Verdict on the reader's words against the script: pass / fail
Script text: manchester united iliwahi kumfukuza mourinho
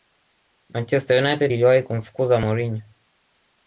pass